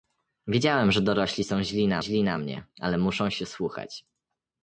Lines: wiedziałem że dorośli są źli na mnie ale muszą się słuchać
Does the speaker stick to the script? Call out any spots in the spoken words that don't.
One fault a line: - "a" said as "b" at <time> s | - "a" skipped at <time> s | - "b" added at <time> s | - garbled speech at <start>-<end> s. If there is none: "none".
- "źli na" added at 2.0 s